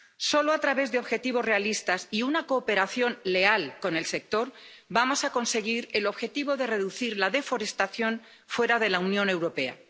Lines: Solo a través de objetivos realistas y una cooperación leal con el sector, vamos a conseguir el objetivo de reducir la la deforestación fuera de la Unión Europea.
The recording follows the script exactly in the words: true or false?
false